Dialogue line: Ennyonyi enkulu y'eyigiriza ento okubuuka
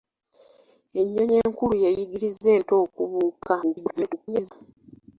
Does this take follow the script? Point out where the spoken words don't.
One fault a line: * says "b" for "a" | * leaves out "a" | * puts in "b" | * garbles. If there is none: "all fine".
* garbles